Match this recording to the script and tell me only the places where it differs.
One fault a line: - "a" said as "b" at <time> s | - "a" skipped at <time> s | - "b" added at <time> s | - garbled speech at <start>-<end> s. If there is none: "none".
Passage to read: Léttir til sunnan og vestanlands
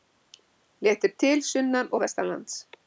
none